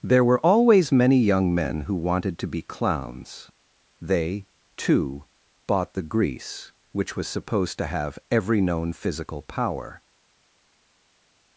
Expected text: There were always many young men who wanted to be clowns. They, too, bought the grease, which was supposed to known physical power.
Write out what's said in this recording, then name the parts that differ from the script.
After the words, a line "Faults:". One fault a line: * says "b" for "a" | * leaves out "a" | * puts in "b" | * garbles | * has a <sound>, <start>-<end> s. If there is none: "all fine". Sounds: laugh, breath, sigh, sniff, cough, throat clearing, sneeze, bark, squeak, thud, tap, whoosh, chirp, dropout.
There were always many young men who wanted to be clowns. They, too, bought the grease, which was supposed to have every known physical power.
Faults:
* puts in "have every"